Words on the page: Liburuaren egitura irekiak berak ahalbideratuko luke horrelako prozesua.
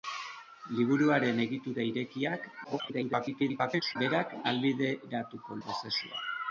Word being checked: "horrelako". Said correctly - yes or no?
no